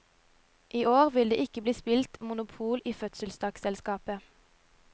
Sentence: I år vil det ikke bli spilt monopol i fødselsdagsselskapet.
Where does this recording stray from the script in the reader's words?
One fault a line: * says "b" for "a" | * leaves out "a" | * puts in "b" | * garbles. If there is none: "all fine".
all fine